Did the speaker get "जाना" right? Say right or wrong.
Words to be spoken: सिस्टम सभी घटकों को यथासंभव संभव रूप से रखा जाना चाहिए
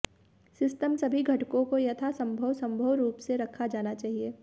right